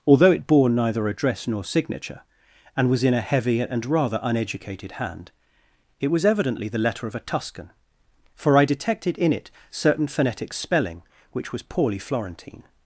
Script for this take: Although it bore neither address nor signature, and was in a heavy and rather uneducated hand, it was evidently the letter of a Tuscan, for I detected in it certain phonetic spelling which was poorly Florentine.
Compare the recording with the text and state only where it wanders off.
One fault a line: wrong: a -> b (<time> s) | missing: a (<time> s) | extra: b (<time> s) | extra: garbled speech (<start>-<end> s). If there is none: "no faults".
no faults